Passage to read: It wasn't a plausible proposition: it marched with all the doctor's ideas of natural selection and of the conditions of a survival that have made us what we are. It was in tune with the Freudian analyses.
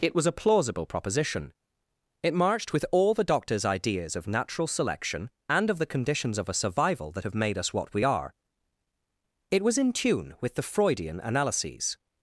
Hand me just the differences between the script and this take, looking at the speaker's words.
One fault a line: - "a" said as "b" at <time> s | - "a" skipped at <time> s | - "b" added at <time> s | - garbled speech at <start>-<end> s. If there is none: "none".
- "wasn't" said as "was" at 0.1 s